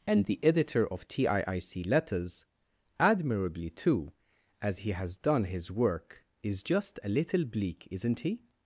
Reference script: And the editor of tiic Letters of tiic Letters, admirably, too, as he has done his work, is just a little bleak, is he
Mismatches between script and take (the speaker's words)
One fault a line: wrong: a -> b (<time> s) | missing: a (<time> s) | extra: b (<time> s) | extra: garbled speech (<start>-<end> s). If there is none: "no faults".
missing: of tiic Letters (2.5 s)
wrong: is -> isn't (7.9 s)